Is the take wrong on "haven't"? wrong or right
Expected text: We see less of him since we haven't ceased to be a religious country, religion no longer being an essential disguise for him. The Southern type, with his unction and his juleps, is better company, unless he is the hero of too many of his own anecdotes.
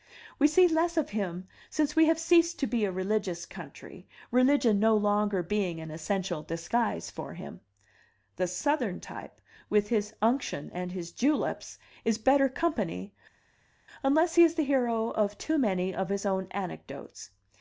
wrong